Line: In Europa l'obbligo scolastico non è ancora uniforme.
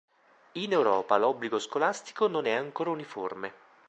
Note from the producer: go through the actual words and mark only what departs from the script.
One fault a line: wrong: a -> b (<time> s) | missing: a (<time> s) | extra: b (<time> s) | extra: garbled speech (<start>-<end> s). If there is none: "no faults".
no faults